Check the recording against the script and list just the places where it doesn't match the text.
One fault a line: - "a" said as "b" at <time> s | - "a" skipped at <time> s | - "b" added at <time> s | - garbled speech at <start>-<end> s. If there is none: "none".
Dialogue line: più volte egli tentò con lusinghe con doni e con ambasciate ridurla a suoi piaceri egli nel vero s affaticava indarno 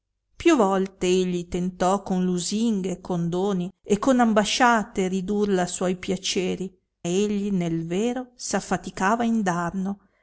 none